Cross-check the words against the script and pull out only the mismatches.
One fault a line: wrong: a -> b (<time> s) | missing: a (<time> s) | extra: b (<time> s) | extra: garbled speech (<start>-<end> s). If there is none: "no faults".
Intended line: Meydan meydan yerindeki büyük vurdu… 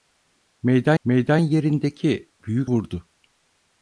no faults